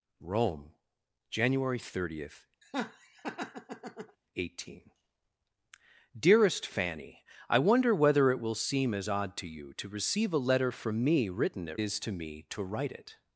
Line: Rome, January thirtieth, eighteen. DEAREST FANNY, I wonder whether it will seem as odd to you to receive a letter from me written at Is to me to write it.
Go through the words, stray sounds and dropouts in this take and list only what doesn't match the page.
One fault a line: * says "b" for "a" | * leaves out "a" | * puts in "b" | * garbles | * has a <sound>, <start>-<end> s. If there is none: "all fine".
* has a laugh, 2.6-4.2 s